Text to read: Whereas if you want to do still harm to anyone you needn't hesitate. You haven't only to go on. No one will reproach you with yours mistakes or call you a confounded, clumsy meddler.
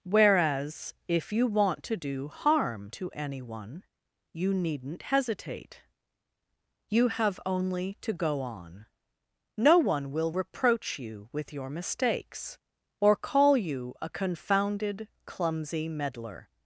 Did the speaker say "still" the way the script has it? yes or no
no